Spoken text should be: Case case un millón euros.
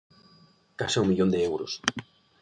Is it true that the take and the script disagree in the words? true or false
true